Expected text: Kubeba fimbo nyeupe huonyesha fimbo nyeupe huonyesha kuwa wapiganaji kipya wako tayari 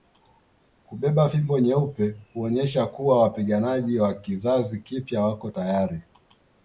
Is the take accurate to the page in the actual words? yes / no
no